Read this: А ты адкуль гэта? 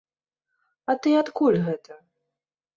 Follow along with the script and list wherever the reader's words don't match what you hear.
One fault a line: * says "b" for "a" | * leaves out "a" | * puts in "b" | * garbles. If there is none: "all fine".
all fine